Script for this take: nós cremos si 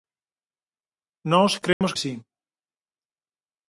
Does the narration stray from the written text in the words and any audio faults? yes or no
yes